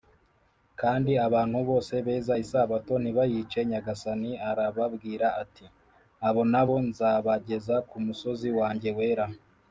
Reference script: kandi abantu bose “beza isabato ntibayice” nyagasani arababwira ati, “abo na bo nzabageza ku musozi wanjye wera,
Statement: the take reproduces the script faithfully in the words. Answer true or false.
true